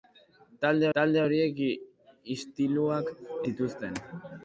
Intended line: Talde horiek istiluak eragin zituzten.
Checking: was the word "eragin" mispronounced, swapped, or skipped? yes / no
yes